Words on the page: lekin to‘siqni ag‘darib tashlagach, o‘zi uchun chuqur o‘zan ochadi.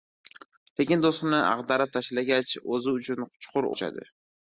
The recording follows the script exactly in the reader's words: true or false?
false